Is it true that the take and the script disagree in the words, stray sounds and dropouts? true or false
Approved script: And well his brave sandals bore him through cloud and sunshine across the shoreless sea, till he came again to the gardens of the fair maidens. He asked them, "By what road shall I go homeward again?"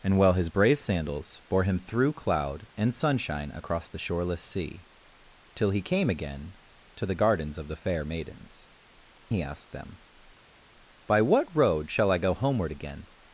false